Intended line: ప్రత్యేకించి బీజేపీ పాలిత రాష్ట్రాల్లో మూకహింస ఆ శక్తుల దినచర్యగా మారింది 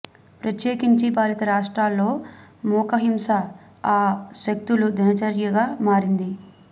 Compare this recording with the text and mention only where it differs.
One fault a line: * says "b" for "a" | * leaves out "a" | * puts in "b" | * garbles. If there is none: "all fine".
* leaves out "బీజేపీ"